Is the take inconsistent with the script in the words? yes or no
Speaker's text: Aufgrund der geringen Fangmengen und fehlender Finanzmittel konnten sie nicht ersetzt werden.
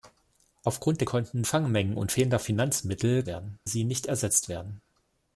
yes